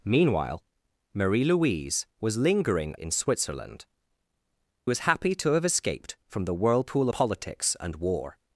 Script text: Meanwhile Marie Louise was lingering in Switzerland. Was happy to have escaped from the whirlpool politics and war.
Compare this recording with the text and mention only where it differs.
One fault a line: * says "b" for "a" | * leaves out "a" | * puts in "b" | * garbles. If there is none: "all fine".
all fine